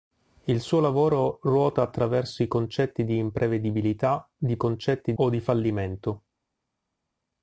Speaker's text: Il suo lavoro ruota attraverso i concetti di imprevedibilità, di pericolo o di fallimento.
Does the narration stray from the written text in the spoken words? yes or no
yes